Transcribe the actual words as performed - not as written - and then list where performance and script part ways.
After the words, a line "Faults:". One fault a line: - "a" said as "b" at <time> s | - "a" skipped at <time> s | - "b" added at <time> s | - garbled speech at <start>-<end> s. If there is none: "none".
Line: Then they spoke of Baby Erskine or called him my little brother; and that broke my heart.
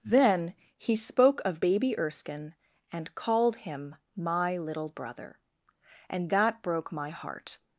Then he spoke of Baby Erskine and called him my little brother; and that broke my heart.
Faults:
- "they" said as "he" at 0.8 s
- "or" said as "and" at 2.9 s